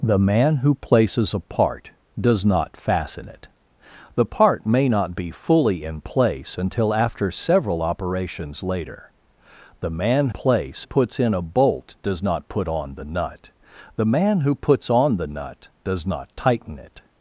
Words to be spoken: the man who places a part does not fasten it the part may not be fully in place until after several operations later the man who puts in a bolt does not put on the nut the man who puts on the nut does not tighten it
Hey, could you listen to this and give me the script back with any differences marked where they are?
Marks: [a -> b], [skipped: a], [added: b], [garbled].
the man who places a part does not fasten it the part may not be fully in place until after several operations later the man [who -> place] puts in a bolt does not put on the nut the man who puts on the nut does not tighten it